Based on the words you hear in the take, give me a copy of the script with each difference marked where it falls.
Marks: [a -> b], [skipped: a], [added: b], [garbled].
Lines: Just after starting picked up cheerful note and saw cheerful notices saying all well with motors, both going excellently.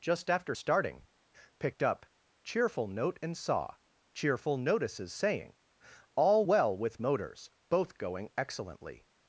Just after starting picked up cheerful note and saw cheerful notices saying all well with motors, both going excellently.